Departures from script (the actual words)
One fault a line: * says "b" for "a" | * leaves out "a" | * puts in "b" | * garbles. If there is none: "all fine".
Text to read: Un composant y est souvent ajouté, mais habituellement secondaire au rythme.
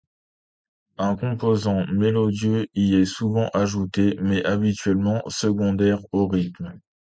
* puts in "mélodieux"